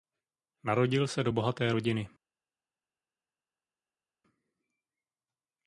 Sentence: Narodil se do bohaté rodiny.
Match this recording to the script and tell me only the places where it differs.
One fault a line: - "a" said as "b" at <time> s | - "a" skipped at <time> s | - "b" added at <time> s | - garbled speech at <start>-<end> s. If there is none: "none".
none